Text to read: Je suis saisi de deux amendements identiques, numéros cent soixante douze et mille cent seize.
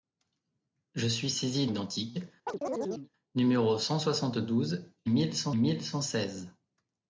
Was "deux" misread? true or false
true